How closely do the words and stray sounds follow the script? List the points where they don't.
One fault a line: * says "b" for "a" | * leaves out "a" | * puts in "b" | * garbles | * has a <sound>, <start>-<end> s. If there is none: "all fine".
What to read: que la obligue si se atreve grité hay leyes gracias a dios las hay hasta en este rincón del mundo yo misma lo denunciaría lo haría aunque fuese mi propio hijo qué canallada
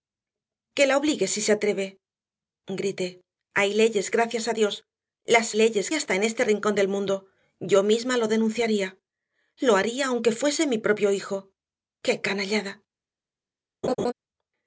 * says "leyes" for "hay"
* has a laugh, 13.8-14.1 s